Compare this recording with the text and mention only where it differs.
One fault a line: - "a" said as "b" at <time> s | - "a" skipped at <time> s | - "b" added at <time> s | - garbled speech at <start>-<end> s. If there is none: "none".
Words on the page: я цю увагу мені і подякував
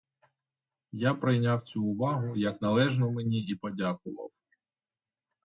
- "прийняв" added at 1.1 s
- "як належну" added at 2.4 s